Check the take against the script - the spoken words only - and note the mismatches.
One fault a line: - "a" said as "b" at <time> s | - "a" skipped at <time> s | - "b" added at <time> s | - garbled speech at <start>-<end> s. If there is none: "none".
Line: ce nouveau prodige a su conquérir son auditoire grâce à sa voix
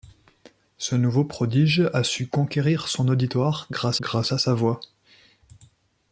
- "grâce" added at 4.0 s